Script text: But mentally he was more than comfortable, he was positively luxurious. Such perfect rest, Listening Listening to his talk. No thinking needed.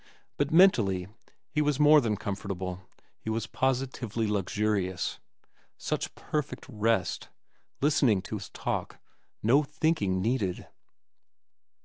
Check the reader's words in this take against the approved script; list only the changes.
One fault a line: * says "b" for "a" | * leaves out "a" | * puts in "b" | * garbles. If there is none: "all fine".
* leaves out "Listening"